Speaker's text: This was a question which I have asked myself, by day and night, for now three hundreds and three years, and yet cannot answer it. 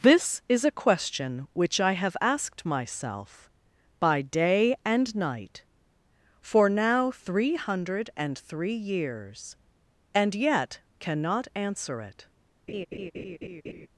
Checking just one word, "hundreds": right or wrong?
wrong